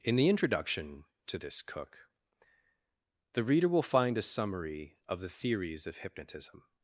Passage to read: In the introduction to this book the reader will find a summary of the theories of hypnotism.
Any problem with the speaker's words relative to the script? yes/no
yes